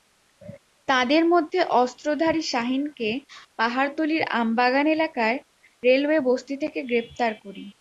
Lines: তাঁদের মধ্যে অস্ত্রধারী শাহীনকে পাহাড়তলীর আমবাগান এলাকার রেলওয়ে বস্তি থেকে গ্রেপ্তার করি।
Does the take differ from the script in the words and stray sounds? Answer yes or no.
no